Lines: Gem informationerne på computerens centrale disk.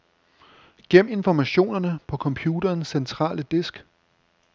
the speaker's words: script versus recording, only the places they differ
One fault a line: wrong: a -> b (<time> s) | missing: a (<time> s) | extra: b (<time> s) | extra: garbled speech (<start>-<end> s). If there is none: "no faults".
no faults